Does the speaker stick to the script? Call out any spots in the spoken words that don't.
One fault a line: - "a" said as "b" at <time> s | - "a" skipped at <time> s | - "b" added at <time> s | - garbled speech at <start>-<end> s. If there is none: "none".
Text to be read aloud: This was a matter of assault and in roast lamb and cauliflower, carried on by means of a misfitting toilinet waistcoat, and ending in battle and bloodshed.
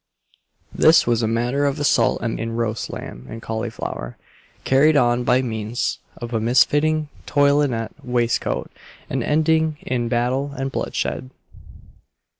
none